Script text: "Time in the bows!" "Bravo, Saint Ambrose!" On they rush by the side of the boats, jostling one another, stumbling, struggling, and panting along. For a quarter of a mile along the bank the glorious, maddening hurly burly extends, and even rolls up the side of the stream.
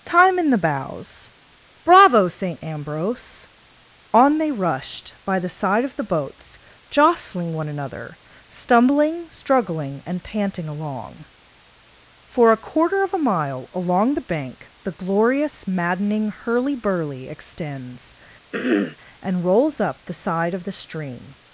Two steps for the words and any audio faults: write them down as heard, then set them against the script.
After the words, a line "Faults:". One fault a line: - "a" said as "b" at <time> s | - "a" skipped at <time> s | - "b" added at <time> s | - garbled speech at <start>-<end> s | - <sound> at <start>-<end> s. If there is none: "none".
"Time in the bows!" "Bravo, Saint Ambrose!" On they rushed by the side of the boats, jostling one another, stumbling, struggling, and panting along. For a quarter of a mile along the bank the glorious, maddening hurly burly extends, and rolls up the side of the stream.
Faults:
- "rush" said as "rushed" at 4.5 s
- throat clearing at 18.5-19.0 s
- "even" skipped at 19.5 s